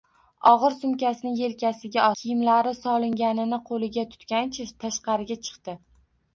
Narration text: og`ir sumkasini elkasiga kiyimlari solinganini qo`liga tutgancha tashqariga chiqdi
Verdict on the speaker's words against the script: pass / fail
pass